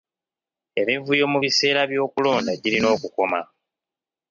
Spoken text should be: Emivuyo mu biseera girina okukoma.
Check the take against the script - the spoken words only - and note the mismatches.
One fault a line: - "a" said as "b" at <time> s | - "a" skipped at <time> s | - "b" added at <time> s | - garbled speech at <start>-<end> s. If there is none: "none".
- "by'okulonda" added at 1.9 s